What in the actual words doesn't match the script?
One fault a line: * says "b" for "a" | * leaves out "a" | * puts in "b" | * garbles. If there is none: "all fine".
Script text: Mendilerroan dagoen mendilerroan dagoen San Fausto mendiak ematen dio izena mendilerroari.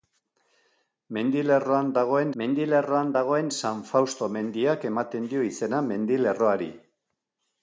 all fine